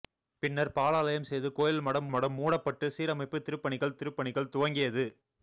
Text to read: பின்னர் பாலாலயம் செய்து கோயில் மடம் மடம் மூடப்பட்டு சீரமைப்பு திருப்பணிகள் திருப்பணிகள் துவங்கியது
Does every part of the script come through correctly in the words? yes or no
yes